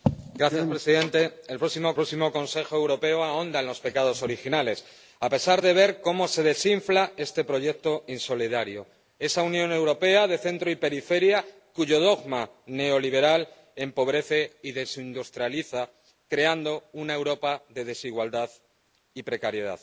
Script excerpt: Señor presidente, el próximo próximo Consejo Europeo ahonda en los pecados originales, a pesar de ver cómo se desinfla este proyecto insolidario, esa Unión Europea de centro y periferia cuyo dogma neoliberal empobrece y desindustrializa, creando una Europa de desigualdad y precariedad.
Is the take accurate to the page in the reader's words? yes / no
yes